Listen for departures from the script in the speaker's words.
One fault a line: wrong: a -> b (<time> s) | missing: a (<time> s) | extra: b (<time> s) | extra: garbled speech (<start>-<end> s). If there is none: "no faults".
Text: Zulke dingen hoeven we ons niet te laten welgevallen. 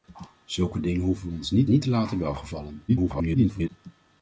extra: niet (1.7 s)
extra: garbled speech (2.9-3.7 s)